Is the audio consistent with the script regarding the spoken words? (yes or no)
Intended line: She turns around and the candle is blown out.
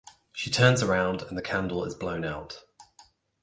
yes